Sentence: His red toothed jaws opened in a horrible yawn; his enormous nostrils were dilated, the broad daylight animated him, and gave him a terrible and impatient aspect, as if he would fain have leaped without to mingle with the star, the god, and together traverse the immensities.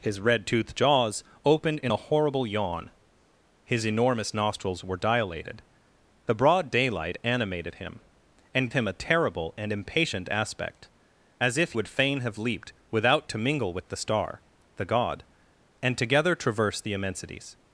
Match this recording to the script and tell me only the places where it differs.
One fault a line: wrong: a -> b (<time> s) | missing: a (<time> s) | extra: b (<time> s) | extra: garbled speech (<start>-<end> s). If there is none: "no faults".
missing: gave (8.7 s)
missing: he (11.7 s)